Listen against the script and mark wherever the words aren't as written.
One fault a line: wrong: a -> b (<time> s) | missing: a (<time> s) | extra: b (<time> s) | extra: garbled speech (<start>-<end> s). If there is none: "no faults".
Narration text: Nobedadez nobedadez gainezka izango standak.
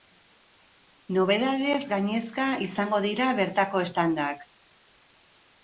missing: nobedadez (1.8 s)
extra: dira bertako (3.1 s)